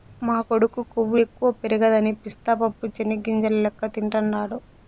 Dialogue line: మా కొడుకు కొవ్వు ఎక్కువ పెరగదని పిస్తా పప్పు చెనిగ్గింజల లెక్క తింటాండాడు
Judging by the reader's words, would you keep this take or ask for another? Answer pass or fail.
pass